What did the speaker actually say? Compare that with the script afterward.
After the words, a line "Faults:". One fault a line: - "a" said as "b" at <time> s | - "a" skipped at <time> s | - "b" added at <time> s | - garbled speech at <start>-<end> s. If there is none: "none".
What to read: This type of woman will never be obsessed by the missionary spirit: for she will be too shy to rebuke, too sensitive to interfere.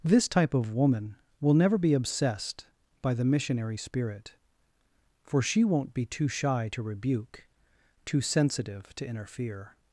This type of woman will never be obsessed by the missionary spirit: for she won't be too shy to rebuke, too sensitive to interfere.
Faults:
- "will" said as "won't" at 5.6 s